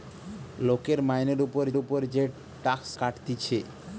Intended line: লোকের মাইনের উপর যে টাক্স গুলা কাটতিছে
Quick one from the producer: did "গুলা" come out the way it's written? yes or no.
no